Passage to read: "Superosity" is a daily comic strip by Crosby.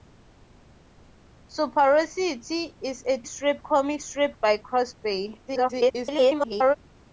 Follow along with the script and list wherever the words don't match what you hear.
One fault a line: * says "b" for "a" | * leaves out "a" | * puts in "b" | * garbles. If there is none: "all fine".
* says "strip" for "daily"
* garbles